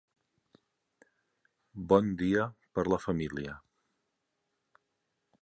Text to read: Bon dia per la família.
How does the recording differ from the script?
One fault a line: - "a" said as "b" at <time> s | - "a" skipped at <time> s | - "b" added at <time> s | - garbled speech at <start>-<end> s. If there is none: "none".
none